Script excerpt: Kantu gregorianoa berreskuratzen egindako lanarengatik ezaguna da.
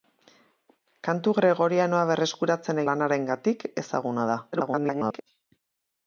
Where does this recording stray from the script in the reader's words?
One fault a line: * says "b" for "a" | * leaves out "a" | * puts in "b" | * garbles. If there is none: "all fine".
* leaves out "egindako"
* garbles